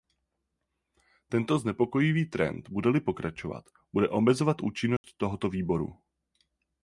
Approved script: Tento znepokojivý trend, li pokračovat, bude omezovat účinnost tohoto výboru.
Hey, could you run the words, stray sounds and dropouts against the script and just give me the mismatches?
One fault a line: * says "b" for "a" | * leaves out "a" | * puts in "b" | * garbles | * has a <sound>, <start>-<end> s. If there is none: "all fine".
* puts in "bude"
* has a dropout, 5.0-5.0 s